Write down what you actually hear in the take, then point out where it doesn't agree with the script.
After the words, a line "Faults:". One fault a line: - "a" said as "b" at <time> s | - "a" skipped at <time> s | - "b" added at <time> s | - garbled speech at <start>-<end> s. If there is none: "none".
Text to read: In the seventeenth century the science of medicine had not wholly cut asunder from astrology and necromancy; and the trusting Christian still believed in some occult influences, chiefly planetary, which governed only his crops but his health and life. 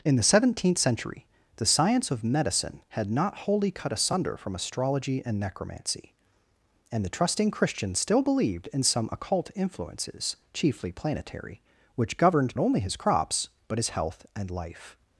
In the seventeenth century the science of medicine had not wholly cut asunder from astrology and necromancy; and the trusting Christian still believed in some occult influences, chiefly planetary, which governed only his crops but his health and life.
Faults:
none